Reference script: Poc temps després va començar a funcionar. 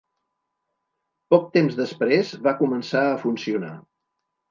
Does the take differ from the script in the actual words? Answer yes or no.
no